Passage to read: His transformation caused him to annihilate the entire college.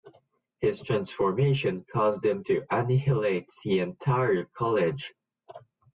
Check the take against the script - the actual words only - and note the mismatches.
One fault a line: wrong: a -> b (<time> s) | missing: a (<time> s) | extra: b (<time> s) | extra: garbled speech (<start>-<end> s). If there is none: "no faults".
no faults